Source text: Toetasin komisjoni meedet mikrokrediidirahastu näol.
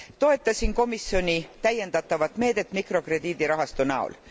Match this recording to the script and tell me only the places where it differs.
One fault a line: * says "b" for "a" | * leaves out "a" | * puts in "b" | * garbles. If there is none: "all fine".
* puts in "täiendatavat"